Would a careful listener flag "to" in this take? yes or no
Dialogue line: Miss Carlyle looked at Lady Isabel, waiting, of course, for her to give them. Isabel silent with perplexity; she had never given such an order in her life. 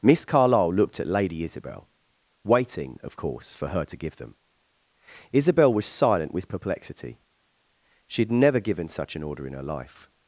no